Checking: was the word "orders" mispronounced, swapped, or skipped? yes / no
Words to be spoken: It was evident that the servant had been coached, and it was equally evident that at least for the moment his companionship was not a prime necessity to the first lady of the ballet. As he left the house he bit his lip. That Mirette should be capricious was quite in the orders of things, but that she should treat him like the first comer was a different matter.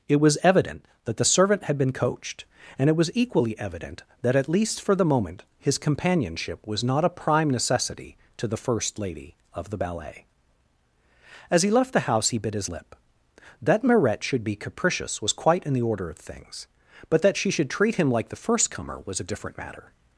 yes